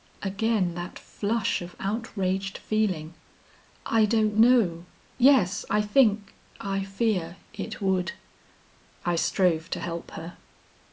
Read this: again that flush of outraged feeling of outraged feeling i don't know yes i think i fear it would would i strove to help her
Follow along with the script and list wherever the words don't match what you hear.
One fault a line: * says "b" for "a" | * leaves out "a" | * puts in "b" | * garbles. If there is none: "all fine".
* leaves out "of outraged feeling"
* leaves out "would"